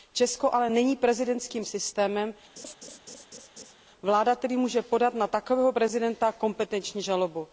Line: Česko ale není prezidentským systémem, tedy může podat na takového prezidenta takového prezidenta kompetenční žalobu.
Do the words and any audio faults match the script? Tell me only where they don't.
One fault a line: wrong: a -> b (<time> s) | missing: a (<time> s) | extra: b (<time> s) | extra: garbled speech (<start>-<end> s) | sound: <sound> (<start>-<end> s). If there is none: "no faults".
sound: laugh (2.6-3.8 s)
extra: vláda (4.0 s)
missing: takového prezidenta (6.3 s)